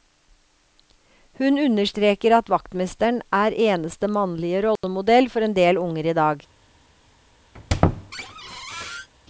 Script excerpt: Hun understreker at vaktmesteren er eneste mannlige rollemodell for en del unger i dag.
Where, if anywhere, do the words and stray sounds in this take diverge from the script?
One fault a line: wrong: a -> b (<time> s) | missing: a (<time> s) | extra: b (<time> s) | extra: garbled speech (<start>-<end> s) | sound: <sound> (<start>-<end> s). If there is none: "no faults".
sound: dropout (4.8-4.8 s)
sound: squeak (7.5-9.1 s)